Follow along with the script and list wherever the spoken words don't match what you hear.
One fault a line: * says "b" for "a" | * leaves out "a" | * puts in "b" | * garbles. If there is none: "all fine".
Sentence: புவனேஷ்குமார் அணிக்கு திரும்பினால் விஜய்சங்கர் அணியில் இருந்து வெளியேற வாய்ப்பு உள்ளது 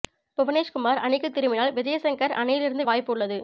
* leaves out "வெளியேற"